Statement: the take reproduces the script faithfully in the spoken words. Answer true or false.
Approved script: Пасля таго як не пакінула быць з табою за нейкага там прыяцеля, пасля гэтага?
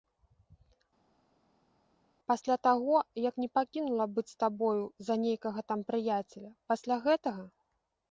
true